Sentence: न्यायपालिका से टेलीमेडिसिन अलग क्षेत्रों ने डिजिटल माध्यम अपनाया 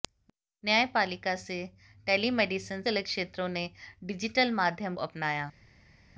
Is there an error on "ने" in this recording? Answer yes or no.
no